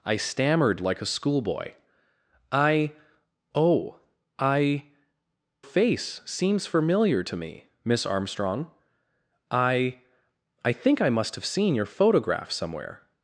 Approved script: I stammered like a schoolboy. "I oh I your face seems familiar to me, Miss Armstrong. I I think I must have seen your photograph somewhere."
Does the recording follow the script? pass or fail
fail